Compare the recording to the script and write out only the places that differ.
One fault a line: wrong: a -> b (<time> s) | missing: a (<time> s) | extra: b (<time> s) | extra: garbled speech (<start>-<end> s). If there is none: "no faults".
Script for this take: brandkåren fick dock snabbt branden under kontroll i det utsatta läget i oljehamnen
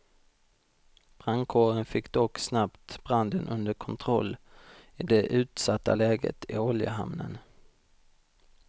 no faults